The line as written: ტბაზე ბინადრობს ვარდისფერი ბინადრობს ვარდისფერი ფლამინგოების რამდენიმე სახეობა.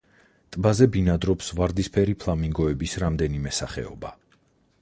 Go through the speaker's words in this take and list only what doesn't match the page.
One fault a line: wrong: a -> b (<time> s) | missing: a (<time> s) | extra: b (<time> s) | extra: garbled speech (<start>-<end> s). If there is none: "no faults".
missing: ბინადრობს ვარდისფერი (2.2 s)